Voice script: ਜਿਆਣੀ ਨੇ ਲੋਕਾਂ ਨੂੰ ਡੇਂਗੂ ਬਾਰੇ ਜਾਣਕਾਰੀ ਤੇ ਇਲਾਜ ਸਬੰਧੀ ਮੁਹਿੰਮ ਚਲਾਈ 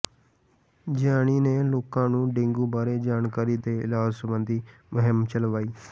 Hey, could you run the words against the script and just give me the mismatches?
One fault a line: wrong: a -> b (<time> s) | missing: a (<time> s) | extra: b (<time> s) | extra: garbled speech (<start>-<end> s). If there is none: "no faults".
no faults